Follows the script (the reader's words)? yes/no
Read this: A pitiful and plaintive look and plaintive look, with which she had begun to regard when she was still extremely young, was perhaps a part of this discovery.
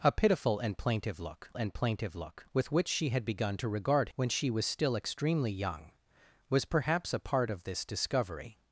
yes